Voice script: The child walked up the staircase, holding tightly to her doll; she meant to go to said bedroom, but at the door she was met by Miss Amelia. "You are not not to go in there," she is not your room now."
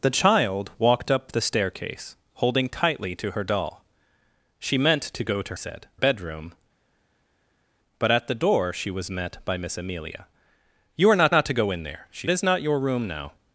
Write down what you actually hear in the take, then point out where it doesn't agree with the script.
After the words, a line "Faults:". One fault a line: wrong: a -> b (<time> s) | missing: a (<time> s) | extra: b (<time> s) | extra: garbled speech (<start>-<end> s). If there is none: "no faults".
The child walked up the staircase, holding tightly to her doll; she meant to go to said bedroom, but at the door she was met by Miss Amelia. "You are not not to go in there," she is not your room now."
Faults:
no faults